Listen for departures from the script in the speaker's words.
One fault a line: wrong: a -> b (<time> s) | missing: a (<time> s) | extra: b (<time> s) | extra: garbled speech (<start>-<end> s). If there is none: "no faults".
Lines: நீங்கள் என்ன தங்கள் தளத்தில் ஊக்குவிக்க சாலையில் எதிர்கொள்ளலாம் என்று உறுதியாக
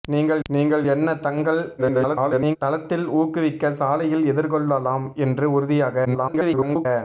extra: நீங்கள் (0.5 s)
extra: garbled speech (1.8-2.6 s)
extra: garbled speech (6.0-6.9 s)